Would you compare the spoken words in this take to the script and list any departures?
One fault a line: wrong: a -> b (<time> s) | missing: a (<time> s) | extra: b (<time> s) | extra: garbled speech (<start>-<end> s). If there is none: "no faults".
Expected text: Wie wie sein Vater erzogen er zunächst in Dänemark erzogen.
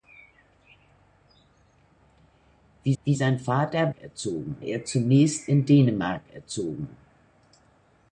no faults